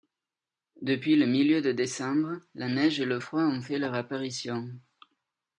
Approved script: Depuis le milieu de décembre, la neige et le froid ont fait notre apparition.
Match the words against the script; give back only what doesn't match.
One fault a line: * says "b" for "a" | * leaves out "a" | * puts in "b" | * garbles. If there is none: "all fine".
* says "leur" for "notre"